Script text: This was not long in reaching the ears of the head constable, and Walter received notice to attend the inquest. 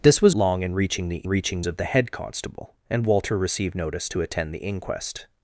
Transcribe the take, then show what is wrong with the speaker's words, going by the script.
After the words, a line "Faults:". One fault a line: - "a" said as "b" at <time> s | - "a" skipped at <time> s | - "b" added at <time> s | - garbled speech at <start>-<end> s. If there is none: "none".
This was long in reaching the reaching of the head constable, and Walter received notice to attend the inquest.
Faults:
- "not" skipped at 0.3 s
- "ears" said as "reaching" at 1.3 s